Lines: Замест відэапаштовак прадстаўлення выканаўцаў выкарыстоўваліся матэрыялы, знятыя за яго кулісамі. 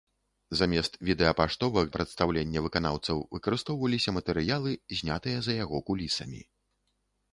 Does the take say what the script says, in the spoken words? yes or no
yes